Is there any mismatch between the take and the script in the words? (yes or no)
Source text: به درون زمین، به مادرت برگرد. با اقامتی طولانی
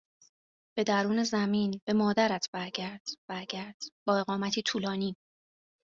yes